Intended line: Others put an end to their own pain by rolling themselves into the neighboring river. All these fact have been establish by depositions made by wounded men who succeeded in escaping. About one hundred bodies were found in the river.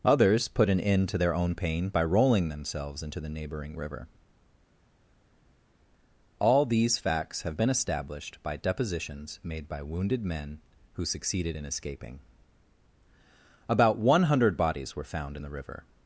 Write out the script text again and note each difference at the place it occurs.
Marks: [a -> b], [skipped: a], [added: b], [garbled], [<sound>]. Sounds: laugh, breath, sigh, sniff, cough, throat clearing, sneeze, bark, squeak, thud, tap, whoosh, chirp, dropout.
Others put an end to their own pain by rolling themselves into the neighboring river. All these [fact -> facts] have been [establish -> established] by depositions made by wounded men who succeeded in escaping. About one hundred bodies were found in the river.